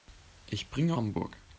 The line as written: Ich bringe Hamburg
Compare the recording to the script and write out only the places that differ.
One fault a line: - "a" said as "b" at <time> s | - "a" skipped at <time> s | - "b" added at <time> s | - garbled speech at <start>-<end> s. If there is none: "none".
none